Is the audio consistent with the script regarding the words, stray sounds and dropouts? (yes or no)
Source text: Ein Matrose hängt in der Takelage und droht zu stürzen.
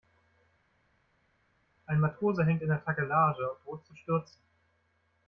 yes